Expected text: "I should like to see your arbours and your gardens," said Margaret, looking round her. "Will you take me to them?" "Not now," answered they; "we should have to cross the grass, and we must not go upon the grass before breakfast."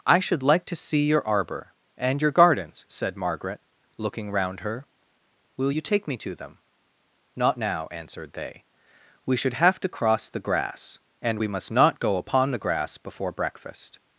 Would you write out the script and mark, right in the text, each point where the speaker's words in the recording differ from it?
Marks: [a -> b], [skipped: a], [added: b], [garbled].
"I should like to see your [arbours -> arbour] and your gardens," said Margaret, looking round her. "Will you take me to them?" "Not now," answered they; "we should have to cross the grass, and we must not go upon the grass before breakfast."